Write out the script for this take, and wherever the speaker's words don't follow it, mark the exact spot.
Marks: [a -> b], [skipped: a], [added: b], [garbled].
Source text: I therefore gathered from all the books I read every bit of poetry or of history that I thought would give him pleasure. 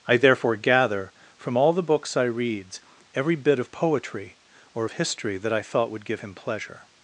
I therefore [gathered -> gather] from all the books I [read -> reads] every bit of poetry or of history that I thought would give him pleasure.